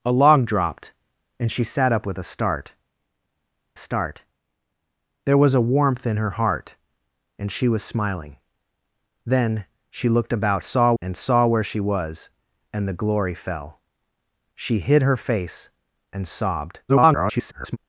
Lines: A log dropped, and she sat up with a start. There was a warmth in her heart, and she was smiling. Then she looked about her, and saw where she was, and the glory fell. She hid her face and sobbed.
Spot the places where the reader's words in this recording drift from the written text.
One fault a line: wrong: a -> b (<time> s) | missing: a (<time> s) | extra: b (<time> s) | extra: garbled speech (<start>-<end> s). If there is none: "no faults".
extra: start (3.8 s)
wrong: her -> saw (10.6 s)
extra: garbled speech (16.9-17.8 s)